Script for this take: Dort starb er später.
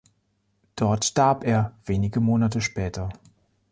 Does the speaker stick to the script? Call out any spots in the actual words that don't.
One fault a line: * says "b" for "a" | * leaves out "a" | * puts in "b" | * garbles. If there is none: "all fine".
* puts in "wenige Monate"